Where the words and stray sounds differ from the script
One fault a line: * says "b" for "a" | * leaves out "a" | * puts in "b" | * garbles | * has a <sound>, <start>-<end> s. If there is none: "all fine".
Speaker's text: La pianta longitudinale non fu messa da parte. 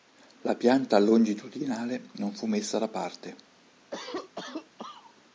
* has a cough, 3.9-5.2 s